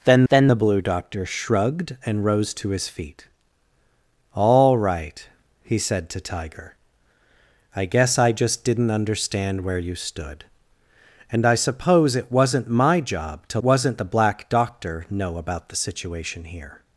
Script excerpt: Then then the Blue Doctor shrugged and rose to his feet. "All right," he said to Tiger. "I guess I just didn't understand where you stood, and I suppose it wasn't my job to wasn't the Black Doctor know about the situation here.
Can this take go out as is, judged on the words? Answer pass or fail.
pass